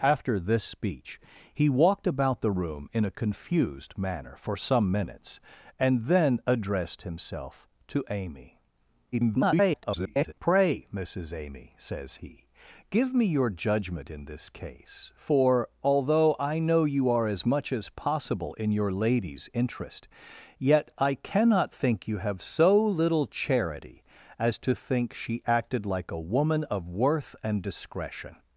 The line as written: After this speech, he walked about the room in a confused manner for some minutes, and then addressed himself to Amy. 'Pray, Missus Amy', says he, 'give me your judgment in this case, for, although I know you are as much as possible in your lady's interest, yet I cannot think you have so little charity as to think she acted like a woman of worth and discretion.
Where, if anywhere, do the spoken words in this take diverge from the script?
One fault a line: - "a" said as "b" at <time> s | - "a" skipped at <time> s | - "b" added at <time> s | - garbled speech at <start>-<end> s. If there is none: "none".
- garbled speech at 9.1-10.3 s